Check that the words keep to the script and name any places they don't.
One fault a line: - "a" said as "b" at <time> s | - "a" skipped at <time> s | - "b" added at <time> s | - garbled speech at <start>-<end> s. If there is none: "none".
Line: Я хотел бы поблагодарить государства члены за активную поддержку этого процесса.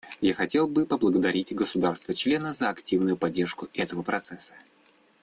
none